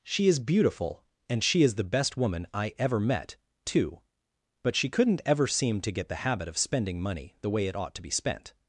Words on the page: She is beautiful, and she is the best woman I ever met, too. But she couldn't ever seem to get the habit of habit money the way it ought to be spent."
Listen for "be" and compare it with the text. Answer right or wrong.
right